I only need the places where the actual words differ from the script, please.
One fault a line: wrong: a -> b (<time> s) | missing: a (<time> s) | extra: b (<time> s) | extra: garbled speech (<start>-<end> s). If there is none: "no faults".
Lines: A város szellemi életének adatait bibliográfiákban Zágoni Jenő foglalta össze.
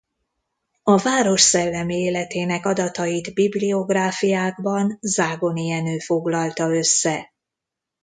no faults